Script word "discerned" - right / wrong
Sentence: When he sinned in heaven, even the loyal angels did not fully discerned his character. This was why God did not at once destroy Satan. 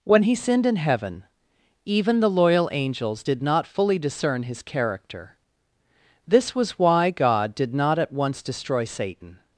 wrong